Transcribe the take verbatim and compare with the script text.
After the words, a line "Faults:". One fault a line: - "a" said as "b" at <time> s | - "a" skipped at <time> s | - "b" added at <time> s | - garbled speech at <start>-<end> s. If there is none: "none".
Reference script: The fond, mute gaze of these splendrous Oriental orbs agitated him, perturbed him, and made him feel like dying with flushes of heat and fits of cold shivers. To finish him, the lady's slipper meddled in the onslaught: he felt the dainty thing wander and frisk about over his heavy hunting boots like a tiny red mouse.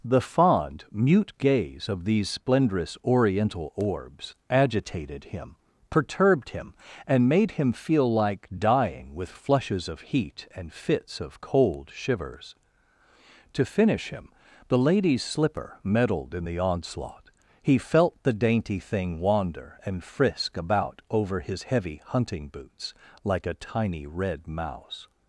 The fond, mute gaze of these splendrous Oriental orbs agitated him, perturbed him, and made him feel like dying with flushes of heat and fits of cold shivers. To finish him, the lady's slipper meddled in the onslaught: he felt the dainty thing wander and frisk about over his heavy hunting boots like a tiny red mouse.
Faults:
none